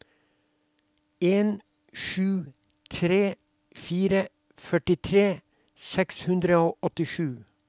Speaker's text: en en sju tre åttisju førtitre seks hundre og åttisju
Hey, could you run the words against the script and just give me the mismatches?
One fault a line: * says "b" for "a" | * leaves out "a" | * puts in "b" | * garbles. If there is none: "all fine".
* leaves out "en"
* says "fire" for "åttisju"